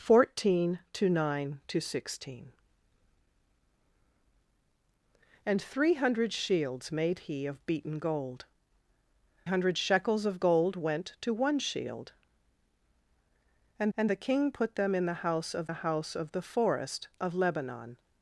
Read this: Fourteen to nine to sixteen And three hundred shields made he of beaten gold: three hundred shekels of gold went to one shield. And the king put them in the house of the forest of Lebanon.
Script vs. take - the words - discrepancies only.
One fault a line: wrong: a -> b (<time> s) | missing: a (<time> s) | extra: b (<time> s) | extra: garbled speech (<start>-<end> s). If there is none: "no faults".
missing: three (8.4 s)
extra: and (14.0 s)
extra: house of the (15.8 s)